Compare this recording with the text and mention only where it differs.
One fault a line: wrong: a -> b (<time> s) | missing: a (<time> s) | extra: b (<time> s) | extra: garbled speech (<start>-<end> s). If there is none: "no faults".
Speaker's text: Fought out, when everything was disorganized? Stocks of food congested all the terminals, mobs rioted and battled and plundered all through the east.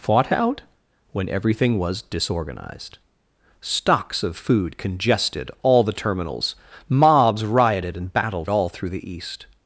missing: and plundered (8.5 s)